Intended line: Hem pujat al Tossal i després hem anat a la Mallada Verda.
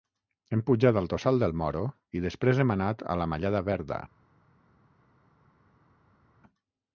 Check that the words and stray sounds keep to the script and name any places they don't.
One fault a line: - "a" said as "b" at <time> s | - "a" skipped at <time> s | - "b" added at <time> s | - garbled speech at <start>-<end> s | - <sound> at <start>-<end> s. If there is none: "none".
- "del Moro" added at 1.4 s